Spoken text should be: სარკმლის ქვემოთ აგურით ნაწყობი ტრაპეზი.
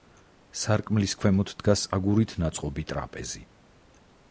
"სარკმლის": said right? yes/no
yes